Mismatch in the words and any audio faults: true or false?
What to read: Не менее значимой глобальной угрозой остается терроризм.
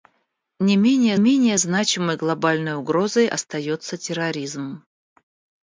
true